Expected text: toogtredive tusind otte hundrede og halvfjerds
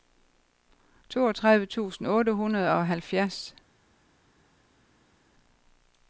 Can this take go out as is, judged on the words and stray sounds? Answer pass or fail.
pass